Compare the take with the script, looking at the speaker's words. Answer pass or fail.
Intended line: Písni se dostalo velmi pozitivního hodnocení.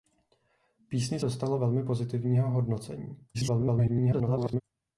fail